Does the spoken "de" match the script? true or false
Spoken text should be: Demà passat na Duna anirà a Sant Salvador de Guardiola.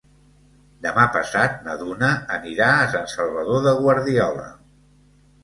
true